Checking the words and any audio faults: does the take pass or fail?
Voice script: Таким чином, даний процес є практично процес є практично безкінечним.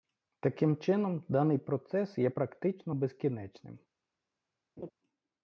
fail